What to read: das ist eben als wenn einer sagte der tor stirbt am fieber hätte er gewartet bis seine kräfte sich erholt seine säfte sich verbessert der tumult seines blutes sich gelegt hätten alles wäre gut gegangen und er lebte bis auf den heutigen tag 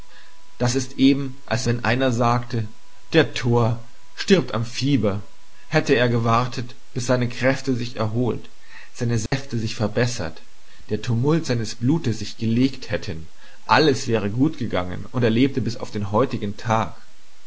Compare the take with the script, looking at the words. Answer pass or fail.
pass